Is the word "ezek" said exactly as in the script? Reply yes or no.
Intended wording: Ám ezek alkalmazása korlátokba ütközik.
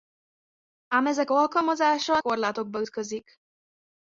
yes